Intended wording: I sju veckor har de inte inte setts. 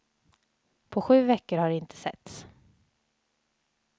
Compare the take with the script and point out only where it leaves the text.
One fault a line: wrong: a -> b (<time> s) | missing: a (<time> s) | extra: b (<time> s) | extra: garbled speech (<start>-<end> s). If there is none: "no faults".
wrong: I -> På (0.9 s)
missing: inte (2.0 s)